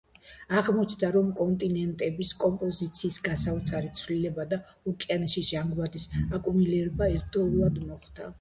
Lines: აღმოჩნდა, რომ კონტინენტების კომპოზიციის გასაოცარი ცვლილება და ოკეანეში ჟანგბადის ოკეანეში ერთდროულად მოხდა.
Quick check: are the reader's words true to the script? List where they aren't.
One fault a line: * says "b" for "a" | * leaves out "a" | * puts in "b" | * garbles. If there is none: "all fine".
* says "აკუმულირება" for "ოკეანეში"